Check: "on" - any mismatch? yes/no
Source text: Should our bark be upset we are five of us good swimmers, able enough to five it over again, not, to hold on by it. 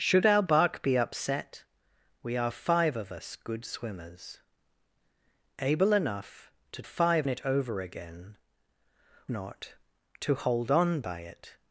no